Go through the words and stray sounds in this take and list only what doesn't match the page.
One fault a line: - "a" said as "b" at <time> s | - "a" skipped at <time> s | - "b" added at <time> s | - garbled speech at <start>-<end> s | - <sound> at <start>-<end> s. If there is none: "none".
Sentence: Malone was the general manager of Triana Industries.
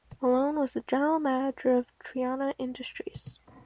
none